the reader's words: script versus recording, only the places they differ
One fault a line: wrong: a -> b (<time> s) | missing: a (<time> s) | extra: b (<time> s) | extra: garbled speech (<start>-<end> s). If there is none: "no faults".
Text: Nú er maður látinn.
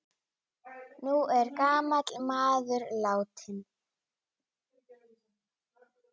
extra: gamall (1.6 s)